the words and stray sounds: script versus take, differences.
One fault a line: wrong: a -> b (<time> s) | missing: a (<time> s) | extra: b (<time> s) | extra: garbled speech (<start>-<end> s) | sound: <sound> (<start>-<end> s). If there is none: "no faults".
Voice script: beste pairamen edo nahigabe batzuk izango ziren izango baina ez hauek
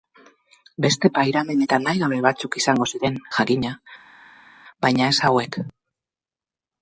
wrong: edo -> eta (1.6 s)
wrong: izango -> jakina (3.4 s)